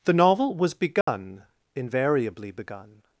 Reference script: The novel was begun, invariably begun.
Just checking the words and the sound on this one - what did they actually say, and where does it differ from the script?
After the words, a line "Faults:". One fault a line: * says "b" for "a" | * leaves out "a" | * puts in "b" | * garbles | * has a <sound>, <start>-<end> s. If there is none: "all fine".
The novel was begun, invariably begun.
Faults:
* has a dropout, 1.0-1.1 s